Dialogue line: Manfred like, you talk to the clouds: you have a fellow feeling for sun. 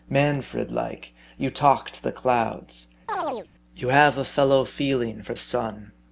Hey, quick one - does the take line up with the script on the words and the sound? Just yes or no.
no